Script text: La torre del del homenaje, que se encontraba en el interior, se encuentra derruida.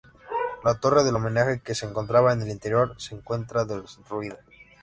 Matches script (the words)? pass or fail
fail